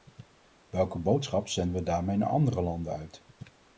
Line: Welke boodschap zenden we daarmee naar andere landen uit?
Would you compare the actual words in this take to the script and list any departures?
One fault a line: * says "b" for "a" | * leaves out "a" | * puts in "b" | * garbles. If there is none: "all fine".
all fine